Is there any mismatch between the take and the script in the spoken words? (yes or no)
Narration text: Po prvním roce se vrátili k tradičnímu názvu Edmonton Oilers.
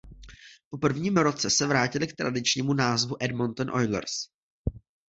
no